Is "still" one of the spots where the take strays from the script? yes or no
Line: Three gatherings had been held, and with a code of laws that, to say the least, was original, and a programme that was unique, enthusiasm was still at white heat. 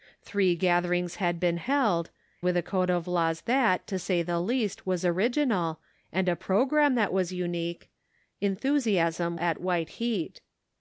yes